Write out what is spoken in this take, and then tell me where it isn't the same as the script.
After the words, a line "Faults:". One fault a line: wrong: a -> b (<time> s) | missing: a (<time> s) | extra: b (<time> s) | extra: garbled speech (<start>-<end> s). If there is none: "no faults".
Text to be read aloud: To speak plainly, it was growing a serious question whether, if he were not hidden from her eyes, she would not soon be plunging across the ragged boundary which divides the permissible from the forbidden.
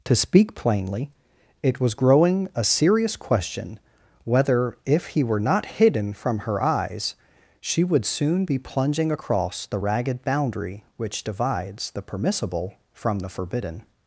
To speak plainly, it was growing a serious question whether, if he were not hidden from her eyes, she would soon be plunging across the ragged boundary which divides the permissible from the forbidden.
Faults:
missing: not (8.1 s)